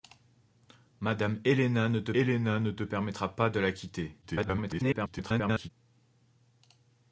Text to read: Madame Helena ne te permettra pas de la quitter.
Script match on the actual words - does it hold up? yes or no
no